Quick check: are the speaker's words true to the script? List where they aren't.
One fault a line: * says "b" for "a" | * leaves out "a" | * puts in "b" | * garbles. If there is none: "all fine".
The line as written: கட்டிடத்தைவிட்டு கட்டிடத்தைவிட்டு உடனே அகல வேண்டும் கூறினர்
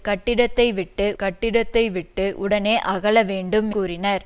all fine